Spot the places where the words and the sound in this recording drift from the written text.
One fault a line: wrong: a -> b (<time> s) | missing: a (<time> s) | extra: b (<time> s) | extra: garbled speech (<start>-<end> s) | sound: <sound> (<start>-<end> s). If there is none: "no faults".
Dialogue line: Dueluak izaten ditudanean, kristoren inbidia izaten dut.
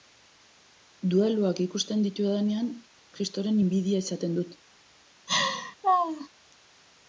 wrong: izaten -> ikusten (1.6 s)
sound: laugh (5.3-6.3 s)